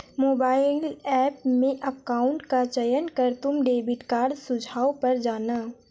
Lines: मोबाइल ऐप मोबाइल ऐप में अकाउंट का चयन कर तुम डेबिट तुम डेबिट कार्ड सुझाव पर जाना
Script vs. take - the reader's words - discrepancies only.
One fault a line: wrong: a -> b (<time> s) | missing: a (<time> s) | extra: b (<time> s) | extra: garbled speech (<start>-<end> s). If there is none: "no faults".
missing: मोबाइल ऐप (1.4 s)
missing: तुम डेबिट (4.0 s)